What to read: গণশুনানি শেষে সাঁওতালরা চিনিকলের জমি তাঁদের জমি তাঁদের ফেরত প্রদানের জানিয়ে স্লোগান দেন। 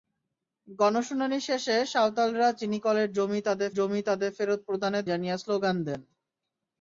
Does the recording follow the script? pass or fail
pass